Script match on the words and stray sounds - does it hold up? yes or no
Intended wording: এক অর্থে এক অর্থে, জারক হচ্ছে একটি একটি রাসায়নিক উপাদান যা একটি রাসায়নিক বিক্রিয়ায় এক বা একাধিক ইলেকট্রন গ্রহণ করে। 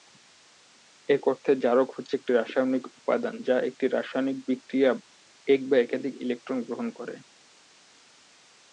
no